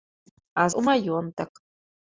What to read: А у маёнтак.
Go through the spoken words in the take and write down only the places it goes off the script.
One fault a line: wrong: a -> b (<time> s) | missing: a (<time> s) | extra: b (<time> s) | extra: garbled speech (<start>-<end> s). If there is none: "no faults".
no faults